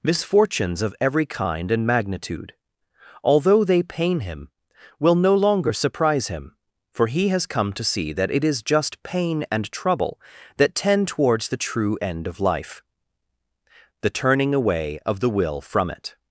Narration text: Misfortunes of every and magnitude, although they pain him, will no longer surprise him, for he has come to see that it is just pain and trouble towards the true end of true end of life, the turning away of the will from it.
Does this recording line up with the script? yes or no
no